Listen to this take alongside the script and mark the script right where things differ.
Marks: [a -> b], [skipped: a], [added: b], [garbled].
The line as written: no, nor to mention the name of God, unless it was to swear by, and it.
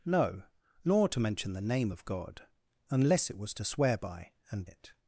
no, nor to mention the name of God, unless it was to swear by, and it.